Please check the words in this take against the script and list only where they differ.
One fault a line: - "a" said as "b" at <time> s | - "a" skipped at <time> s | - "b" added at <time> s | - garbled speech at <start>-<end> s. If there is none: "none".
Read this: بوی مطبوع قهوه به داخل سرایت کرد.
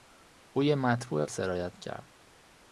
- "قهوه به داخل" skipped at 1.2 s